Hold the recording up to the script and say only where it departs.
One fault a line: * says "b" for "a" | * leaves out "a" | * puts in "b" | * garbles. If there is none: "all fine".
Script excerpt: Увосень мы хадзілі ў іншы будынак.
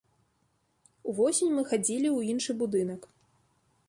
all fine